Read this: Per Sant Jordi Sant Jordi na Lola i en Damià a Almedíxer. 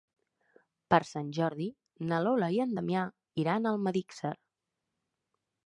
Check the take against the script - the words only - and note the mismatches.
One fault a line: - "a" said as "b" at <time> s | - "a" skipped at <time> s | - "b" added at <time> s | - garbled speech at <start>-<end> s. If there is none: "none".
- "Sant Jordi" skipped at 1.7 s
- "iran" added at 3.4 s